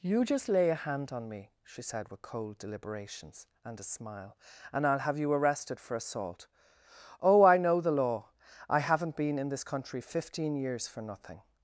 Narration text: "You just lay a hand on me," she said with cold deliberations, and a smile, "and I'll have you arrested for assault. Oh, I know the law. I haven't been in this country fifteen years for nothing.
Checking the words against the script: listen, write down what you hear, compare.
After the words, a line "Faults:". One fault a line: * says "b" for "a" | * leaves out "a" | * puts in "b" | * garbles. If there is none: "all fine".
"You just lay a hand on me," she said with cold deliberations, and a smile, "and I'll have you arrested for assault. Oh, I know the law. I haven't been in this country fifteen years for nothing.
Faults:
all fine